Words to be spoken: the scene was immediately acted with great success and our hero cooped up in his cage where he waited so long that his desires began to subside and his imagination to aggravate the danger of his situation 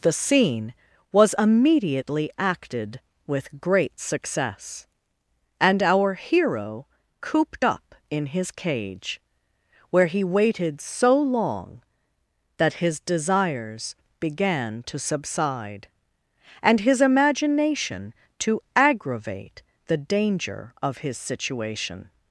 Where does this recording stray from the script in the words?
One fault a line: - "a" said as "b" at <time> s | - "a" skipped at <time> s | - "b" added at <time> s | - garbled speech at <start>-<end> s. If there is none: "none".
none